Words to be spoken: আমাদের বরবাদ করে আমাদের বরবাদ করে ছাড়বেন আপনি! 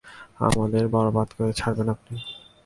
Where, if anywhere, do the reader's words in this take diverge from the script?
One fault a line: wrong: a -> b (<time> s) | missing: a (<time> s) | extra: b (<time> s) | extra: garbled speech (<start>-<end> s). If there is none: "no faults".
missing: আমাদের বরবাদ করে (1.5 s)